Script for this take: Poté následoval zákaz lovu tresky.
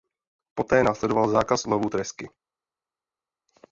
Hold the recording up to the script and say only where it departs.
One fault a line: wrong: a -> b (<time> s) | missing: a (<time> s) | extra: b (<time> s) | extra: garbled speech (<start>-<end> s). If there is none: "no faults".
no faults